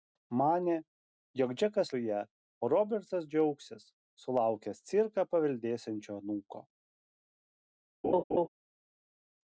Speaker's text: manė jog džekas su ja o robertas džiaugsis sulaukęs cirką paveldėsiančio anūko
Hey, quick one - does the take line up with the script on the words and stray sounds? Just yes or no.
no